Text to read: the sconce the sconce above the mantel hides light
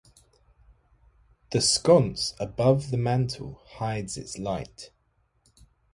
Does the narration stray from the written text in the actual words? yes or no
yes